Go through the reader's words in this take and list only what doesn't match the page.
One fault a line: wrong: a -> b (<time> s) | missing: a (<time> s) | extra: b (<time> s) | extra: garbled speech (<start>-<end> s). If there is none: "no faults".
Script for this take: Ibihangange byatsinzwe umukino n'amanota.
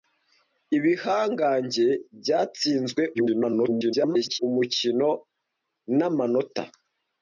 extra: garbled speech (3.1-4.4 s)